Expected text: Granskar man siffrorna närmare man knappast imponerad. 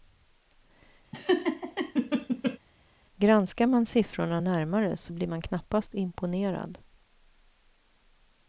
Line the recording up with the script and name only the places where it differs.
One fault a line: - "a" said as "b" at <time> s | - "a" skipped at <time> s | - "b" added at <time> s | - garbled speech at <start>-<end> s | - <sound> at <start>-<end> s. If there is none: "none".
- laugh at 1.1-2.6 s
- "så blir" added at 5.0 s